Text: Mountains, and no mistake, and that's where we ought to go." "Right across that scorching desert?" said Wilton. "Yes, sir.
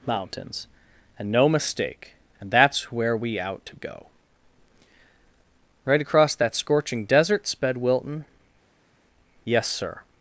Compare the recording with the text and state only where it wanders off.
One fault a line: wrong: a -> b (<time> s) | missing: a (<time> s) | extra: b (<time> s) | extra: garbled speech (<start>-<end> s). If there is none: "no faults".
wrong: ought -> out (3.4 s)
wrong: said -> sped (7.5 s)